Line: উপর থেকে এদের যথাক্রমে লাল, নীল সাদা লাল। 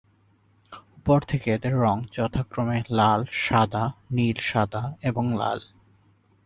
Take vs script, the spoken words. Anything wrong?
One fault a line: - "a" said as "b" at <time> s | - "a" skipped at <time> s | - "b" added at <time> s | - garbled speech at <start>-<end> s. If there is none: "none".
- "রঙ" added at 1.8 s
- "সাদা" added at 3.4 s
- "এবং" added at 5.0 s